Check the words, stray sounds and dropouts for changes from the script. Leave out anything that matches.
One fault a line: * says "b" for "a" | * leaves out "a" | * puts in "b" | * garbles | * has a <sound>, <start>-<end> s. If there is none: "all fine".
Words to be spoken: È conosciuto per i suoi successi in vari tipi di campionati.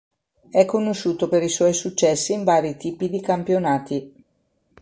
all fine